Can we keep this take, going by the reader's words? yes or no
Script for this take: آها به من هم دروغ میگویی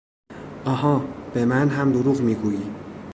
yes